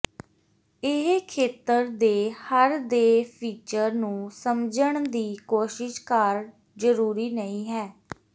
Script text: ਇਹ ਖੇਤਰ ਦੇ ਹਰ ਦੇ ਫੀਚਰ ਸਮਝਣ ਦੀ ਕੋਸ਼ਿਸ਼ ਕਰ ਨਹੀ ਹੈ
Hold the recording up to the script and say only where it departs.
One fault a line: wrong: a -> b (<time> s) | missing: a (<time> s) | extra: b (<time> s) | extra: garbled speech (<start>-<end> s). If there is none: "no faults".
extra: ਨੂੰ (3.9 s)
extra: ਜ਼ਰੂਰੀ (6.8 s)